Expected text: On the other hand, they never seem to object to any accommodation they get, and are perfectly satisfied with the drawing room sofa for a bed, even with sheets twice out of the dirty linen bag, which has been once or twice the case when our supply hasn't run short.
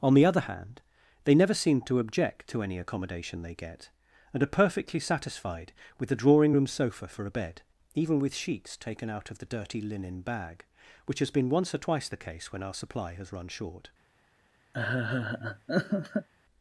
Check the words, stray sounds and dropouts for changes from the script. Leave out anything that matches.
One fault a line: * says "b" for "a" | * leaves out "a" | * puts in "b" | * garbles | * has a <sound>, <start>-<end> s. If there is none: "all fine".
* says "taken" for "twice"
* says "has" for "hasn't"
* has a laugh, 14.7-16.3 s